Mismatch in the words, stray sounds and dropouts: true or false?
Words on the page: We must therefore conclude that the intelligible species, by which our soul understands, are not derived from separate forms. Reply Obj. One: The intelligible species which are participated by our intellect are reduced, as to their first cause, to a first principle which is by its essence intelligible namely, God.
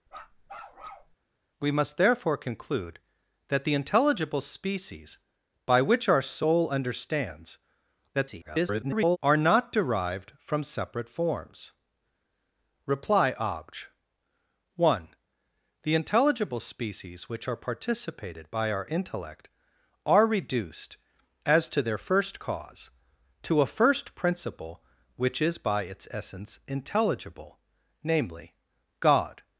true